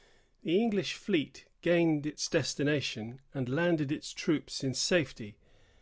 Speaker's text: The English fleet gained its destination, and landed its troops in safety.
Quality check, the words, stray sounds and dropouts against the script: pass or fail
pass